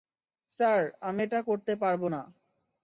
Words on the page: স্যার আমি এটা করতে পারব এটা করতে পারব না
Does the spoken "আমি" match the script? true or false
true